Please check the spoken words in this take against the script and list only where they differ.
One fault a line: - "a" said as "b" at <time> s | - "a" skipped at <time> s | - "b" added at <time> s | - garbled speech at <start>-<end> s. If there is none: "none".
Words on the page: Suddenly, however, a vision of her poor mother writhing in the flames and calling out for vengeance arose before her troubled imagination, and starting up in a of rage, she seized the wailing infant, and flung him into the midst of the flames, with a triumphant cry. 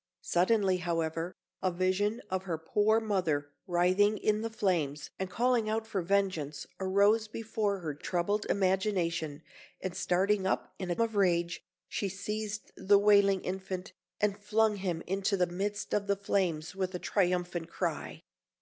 none